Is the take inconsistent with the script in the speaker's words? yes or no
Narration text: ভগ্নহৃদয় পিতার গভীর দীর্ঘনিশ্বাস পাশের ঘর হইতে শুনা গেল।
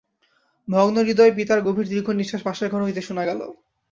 no